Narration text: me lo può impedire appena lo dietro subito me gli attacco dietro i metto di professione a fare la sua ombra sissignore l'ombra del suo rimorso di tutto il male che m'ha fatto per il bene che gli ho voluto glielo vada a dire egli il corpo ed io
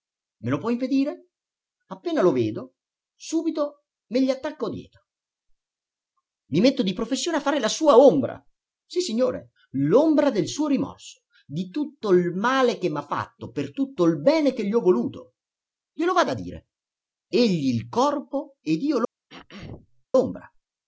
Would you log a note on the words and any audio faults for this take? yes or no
yes